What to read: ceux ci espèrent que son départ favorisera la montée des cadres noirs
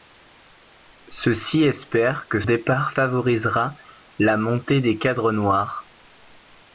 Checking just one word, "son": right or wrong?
wrong